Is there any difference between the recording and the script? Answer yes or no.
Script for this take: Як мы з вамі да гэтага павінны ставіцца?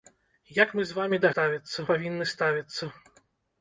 yes